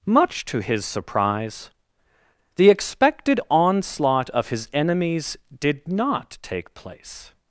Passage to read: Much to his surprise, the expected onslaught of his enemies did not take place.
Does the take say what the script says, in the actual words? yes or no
yes